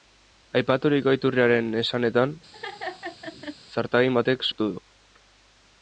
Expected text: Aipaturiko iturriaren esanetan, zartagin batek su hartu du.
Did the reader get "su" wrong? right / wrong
wrong